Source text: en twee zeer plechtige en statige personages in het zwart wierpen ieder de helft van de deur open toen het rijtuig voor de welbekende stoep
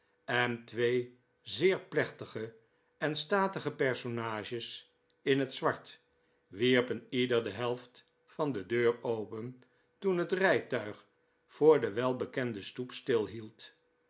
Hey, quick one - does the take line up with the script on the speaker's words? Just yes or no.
yes